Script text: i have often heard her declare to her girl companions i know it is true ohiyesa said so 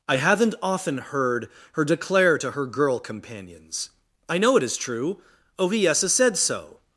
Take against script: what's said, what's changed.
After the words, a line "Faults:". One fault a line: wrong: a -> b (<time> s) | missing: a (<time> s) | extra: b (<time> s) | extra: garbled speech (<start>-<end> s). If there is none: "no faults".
i haven't often heard her declare to her girl companions i know it is true ohiyesa said so
Faults:
wrong: have -> haven't (0.2 s)